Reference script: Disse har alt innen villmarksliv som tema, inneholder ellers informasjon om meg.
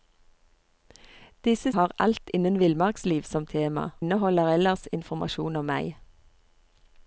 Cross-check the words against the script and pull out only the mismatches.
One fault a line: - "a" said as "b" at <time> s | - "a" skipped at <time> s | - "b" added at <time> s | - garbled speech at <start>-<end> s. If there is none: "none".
none